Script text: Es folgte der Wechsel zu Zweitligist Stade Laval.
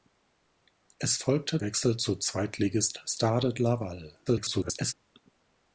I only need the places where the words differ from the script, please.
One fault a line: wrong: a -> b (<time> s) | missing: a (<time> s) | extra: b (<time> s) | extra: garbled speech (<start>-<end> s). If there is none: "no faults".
missing: der (1.6 s)
extra: garbled speech (4.3-4.9 s)